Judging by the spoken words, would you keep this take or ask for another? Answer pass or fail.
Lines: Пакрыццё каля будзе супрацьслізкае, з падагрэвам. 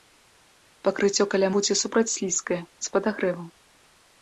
pass